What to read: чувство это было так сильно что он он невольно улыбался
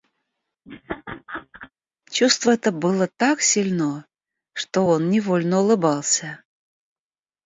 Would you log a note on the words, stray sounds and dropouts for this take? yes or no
yes